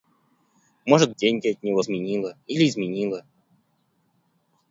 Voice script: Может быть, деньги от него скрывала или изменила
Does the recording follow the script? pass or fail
fail